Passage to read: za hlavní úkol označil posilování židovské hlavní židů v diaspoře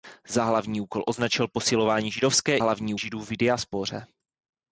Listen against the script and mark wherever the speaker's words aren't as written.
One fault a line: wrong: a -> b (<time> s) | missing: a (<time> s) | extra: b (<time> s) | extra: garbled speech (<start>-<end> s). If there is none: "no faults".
no faults